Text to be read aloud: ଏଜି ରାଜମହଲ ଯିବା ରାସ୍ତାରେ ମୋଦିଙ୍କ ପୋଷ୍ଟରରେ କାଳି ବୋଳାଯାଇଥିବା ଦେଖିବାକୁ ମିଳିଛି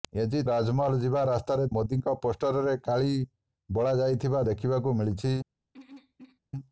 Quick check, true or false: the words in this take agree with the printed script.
true